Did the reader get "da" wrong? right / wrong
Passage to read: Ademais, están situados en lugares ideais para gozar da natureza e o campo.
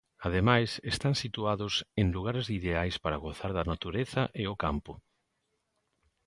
right